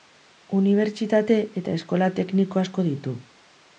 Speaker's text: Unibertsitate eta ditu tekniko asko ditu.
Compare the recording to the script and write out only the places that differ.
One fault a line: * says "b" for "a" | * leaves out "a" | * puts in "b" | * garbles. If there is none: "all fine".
* says "eskola" for "ditu"